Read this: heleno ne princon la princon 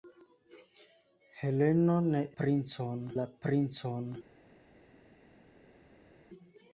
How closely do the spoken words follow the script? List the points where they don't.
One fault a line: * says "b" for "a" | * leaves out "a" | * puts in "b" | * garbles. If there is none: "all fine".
all fine